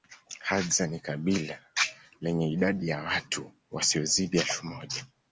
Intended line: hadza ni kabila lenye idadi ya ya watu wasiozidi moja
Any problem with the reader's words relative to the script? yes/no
yes